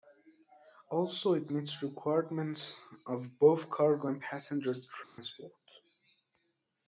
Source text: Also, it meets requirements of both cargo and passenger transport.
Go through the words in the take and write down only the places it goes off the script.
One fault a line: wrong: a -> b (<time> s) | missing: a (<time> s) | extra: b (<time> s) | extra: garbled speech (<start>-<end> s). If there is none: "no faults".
no faults